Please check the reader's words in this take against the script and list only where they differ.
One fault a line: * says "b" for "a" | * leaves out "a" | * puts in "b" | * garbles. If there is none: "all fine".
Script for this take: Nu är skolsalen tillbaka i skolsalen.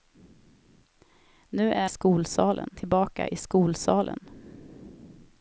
all fine